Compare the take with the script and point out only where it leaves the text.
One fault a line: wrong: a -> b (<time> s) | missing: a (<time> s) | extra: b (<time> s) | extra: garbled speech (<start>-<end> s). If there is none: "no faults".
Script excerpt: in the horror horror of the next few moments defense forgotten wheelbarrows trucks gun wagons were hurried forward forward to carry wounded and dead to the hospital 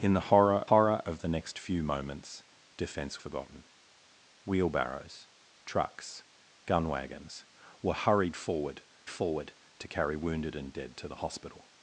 no faults